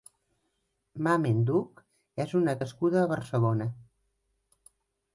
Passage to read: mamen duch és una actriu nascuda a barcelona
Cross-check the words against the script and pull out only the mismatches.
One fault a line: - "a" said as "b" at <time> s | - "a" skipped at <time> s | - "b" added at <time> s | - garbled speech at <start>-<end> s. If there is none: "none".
- "actriu" skipped at 2.6 s